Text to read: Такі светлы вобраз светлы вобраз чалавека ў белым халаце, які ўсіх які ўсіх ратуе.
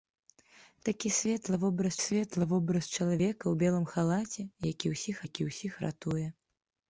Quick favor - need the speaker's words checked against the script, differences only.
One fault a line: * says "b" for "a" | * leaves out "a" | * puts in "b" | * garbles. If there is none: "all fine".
all fine